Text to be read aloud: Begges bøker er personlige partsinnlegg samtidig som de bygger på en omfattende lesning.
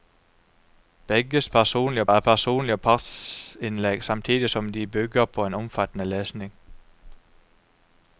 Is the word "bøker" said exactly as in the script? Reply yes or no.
no